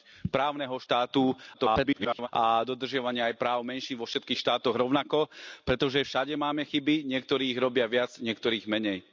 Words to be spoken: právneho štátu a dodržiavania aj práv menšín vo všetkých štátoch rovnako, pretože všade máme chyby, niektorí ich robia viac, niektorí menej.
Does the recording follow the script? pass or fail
fail